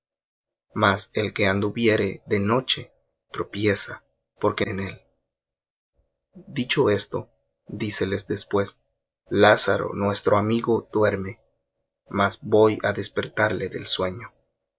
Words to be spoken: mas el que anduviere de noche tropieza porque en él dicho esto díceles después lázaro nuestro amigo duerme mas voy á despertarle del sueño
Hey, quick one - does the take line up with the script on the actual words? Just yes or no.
yes